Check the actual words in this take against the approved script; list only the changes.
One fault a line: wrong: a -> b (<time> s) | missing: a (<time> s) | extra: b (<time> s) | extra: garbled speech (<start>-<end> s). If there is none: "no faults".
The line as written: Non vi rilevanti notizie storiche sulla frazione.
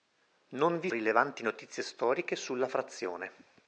no faults